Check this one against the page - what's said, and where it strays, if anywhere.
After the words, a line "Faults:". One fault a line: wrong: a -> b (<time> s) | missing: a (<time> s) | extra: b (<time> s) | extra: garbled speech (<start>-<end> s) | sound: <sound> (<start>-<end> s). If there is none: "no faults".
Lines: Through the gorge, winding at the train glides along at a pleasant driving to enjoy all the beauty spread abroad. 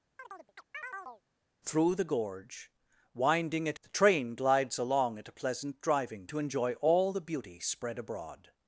Through the gorge, winding at the train glides along at a pleasant driving to enjoy all the beauty spread abroad.
Faults:
sound: chirp (0.2-1.2 s)